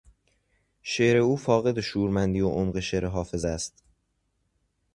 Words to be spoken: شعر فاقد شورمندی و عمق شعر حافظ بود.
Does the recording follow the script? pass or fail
fail